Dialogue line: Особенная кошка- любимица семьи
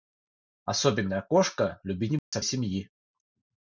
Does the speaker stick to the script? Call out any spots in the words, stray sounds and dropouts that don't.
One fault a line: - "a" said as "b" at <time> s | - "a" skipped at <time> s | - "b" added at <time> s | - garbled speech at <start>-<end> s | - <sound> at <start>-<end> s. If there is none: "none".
- dropout at 2.2-2.3 s